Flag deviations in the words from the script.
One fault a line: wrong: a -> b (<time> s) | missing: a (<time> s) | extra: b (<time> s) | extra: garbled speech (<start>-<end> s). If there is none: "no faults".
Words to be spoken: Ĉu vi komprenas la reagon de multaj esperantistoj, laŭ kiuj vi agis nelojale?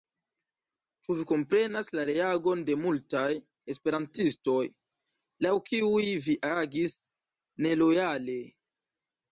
no faults